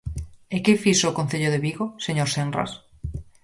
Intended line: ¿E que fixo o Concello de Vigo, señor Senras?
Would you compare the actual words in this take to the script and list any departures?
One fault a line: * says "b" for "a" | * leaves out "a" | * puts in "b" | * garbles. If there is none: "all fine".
all fine